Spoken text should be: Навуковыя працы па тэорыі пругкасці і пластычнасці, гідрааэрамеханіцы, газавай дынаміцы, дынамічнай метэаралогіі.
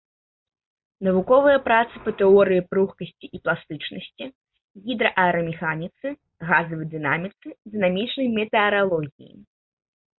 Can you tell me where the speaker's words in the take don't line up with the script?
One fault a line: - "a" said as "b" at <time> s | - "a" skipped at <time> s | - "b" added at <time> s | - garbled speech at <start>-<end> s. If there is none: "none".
none